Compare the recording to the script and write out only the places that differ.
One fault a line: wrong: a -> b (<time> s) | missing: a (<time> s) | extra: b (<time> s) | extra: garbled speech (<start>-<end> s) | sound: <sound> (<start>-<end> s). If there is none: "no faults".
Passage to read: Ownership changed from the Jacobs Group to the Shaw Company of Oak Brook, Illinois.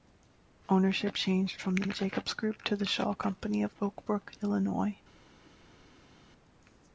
extra: the (1.8 s)